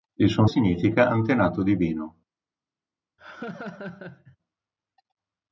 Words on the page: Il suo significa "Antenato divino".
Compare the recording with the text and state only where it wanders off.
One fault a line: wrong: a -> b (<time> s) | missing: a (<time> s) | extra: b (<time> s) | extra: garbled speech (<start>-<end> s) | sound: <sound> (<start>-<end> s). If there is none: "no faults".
sound: laugh (3.2-4.4 s)